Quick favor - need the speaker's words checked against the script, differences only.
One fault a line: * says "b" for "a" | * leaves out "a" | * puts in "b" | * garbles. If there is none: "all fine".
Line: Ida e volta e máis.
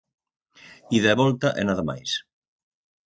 * puts in "nada"